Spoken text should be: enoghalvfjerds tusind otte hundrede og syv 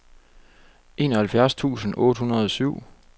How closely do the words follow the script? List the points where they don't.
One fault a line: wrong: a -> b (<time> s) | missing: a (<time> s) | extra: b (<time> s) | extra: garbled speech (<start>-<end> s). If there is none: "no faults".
no faults